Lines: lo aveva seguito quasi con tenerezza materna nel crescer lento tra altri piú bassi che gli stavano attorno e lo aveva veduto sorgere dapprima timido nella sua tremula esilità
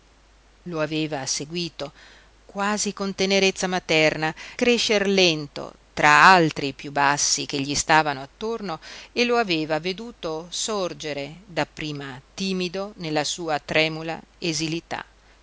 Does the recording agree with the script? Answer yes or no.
no